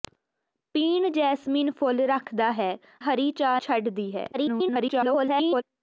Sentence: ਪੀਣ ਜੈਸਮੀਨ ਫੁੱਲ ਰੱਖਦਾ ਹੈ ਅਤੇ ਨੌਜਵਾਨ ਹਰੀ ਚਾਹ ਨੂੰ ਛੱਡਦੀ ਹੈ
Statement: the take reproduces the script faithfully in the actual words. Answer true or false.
false